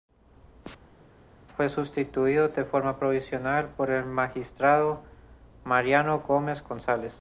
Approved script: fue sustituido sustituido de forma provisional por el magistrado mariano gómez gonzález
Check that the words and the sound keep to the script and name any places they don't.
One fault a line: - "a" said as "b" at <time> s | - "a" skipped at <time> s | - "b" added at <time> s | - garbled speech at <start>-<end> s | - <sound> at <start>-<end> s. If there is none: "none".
- "sustituido" skipped at 2.5 s